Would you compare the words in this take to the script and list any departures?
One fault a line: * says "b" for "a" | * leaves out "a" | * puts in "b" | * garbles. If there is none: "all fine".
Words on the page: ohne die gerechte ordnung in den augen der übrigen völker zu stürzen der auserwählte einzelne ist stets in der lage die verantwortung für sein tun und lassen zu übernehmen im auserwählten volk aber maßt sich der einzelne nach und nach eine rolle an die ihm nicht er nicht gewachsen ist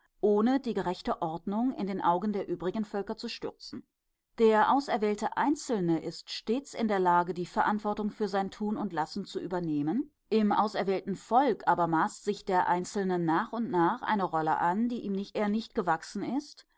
all fine